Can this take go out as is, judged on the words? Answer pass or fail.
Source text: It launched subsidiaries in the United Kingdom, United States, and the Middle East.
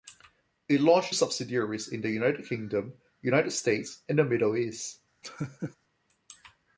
pass